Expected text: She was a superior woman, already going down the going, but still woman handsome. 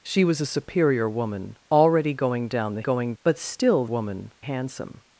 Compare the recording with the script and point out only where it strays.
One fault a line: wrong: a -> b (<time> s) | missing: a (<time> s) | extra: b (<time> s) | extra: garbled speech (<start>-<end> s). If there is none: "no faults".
no faults